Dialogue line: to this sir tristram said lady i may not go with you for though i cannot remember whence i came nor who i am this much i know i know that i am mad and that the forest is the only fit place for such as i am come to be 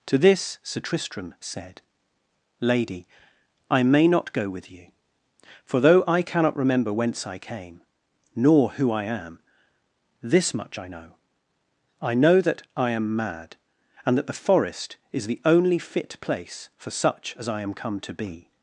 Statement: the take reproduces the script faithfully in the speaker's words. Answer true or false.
true